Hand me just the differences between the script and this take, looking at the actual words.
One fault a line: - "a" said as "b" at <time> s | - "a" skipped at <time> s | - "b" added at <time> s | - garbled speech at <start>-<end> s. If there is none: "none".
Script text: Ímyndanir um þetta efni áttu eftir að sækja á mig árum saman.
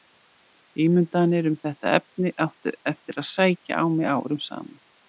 none